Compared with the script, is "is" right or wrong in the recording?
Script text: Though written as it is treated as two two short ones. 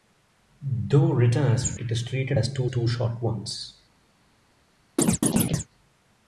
right